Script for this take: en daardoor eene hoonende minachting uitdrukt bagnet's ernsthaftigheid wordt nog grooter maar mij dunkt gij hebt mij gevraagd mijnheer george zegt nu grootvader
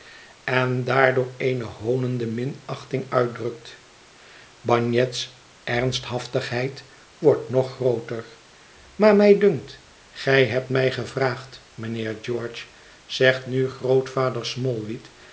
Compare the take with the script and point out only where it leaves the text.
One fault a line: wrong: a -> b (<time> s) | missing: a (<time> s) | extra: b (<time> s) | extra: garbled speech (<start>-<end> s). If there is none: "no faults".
no faults